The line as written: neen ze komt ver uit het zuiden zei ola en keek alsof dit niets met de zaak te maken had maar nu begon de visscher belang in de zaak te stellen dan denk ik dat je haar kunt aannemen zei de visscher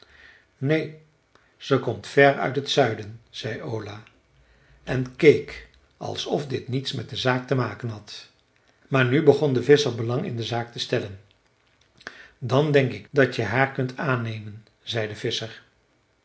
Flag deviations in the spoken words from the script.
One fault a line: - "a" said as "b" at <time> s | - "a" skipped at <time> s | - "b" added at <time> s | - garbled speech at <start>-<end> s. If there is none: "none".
none